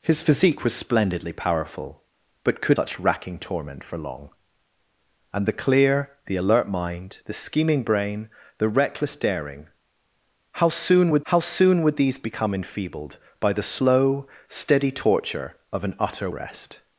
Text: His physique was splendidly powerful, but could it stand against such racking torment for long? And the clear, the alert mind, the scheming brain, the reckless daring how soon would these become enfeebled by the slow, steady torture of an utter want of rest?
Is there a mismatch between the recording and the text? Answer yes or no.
yes